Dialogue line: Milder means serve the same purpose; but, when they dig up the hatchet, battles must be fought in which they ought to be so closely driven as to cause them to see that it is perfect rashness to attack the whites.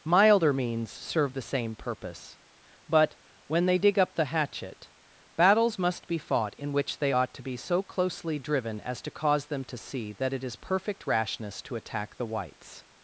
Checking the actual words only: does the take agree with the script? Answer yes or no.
yes